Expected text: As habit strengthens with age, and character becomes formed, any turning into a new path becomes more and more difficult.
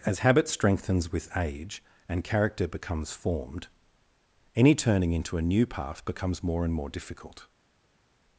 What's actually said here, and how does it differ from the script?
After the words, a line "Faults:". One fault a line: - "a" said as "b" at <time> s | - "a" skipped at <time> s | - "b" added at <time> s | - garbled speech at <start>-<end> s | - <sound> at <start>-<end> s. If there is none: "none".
As habit strengthens with age, and character becomes formed, any turning into a new path becomes more and more difficult.
Faults:
none